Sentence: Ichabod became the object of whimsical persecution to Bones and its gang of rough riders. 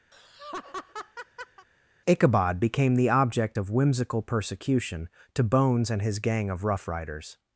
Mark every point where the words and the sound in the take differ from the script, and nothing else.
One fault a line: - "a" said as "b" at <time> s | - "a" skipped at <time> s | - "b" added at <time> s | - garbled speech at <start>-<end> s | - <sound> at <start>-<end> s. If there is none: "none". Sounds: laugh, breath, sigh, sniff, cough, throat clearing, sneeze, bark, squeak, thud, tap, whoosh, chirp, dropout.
- laugh at 0.1-1.7 s
- "its" said as "his" at 6.0 s